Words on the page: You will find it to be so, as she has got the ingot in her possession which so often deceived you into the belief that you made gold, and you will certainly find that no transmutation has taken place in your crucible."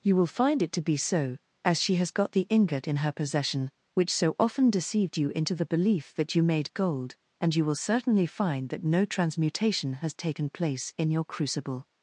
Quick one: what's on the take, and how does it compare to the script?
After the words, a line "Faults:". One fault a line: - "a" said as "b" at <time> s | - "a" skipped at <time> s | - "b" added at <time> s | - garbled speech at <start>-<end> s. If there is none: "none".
You will find it to be so, as she has got the ingot in her possession which so often deceived you into the belief that you made gold, and you will certainly find that no transmutation has taken place in your crucible."
Faults:
none